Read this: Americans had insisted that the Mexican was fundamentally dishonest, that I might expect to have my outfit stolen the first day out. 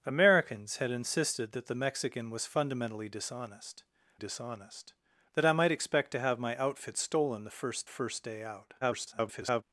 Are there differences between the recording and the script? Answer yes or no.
yes